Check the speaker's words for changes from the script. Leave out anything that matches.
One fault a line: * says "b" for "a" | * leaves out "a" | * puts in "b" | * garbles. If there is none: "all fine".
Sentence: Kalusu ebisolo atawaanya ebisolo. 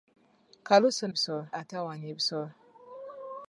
all fine